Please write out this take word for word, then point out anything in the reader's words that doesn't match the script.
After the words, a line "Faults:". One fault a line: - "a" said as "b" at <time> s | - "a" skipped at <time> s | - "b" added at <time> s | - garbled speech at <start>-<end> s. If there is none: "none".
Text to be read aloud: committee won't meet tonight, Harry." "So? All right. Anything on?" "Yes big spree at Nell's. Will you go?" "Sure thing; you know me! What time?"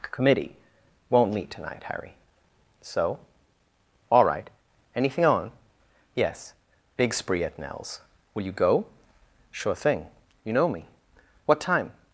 committee won't meet tonight, Harry." "So? All right. Anything on?" "Yes big spree at Nell's. Will you go?" "Sure thing; you know me! What time?"
Faults:
none